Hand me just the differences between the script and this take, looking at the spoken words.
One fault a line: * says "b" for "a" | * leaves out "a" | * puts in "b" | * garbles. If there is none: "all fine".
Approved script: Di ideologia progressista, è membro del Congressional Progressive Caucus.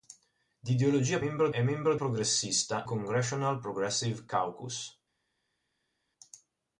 * says "membro" for "progressista"
* says "progressista" for "del"